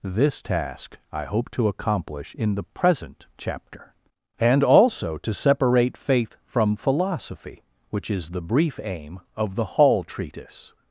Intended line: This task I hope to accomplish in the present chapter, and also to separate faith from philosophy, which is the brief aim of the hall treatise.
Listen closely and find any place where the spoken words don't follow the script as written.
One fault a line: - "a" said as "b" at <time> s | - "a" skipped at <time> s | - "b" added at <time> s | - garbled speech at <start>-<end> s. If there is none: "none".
none